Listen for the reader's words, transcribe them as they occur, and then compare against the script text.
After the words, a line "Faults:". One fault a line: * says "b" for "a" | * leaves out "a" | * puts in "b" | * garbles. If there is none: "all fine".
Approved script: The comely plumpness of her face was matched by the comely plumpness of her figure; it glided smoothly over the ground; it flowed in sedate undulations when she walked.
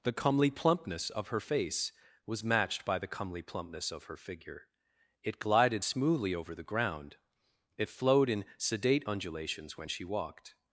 The comely plumpness of her face was matched by the comely plumpness of her figure; it glided smoothly over the ground; it flowed in sedate undulations when she walked.
Faults:
all fine